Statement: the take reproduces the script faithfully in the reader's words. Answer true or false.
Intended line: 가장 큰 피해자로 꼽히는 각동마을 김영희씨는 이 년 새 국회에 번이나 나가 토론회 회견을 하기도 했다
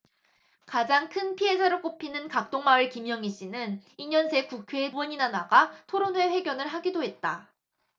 true